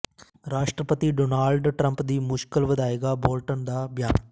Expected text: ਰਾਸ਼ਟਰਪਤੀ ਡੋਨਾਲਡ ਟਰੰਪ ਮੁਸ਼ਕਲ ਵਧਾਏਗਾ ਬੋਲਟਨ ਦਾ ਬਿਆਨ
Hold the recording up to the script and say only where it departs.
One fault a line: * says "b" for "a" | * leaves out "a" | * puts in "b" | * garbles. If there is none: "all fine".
* puts in "ਦੀ"